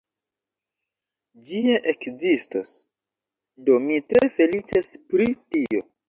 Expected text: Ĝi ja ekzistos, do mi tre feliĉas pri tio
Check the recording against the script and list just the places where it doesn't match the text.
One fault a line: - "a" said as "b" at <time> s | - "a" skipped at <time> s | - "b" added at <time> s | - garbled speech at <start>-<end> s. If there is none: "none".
none